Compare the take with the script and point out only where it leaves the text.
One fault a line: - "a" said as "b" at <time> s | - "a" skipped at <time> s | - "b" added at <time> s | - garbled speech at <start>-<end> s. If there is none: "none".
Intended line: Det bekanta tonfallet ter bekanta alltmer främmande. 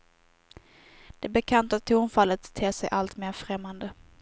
- "bekanta" said as "sig" at 2.7 s